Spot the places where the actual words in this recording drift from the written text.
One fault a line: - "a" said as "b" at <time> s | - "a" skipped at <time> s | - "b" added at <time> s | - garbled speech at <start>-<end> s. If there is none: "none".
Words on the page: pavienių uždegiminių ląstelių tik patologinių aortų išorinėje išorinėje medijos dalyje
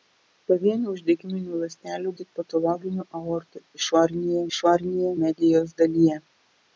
none